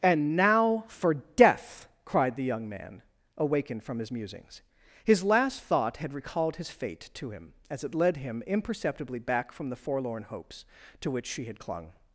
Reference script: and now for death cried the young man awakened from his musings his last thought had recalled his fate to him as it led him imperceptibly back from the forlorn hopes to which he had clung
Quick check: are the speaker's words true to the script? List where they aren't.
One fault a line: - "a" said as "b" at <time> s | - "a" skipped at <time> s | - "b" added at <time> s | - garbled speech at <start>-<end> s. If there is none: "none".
- "he" said as "she" at 11.3 s